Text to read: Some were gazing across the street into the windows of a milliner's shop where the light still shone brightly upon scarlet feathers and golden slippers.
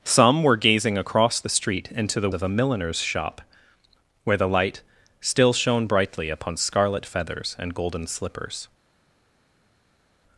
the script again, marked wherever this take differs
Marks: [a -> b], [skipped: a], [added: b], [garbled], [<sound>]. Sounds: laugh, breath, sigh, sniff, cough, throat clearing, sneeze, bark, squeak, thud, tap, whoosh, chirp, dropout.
Some were gazing across the street into the [skipped: windows] of a milliner's shop where the light still shone brightly upon scarlet feathers and golden slippers.